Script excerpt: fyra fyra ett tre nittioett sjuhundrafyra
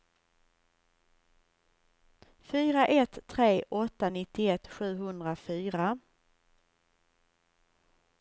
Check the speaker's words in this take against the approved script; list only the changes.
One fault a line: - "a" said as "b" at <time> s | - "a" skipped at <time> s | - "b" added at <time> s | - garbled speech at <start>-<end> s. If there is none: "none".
- "fyra" skipped at 2.9 s
- "åtta" added at 3.7 s